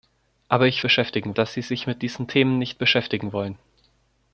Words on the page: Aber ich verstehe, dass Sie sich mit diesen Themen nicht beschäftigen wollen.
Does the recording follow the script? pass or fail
fail